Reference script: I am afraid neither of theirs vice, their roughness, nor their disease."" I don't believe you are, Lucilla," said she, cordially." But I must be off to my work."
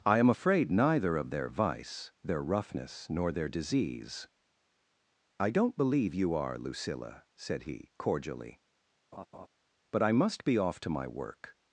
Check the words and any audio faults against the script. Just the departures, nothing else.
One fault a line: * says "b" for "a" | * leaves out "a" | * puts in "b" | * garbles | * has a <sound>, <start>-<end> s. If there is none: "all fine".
* says "their" for "theirs"
* says "he" for "she"
* has a laugh, 9.1-9.5 s